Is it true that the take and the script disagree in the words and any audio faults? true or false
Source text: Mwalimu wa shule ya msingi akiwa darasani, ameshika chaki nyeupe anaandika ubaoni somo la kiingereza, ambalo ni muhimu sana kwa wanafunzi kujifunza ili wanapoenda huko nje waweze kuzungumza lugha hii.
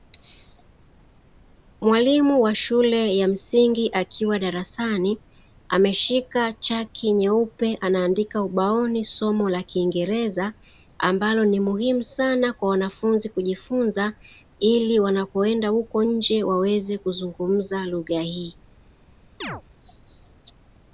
true